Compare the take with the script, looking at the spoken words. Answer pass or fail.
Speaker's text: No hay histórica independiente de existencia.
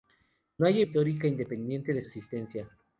pass